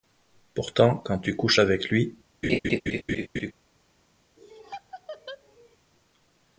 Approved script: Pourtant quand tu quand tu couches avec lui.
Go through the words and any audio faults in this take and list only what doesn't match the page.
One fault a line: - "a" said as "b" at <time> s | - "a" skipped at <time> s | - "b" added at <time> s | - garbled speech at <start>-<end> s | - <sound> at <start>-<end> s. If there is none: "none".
- "quand tu" skipped at 1.4 s
- laugh at 2.4-3.5 s
- laugh at 4.4-5.8 s